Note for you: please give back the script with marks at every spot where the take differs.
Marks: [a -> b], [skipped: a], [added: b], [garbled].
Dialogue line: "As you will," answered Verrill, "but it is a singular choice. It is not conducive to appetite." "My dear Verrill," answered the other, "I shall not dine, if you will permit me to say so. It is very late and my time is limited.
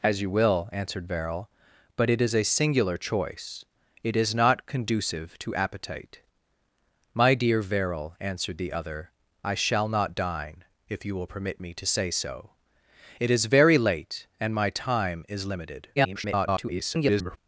"As you will," answered Verrill, "but it is a singular choice. It is not conducive to appetite." "My dear Verrill," answered the other, "I shall not dine, if you will permit me to say so. It is very late and my time is limited. [garbled]